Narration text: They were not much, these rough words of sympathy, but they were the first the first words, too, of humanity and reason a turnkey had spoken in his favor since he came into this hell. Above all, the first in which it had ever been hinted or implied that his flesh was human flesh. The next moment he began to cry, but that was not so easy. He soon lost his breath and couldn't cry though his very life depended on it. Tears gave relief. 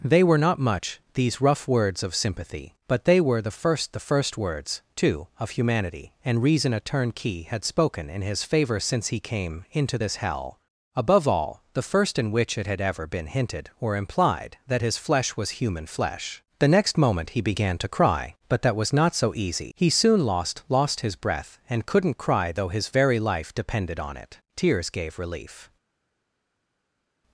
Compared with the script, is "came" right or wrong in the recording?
right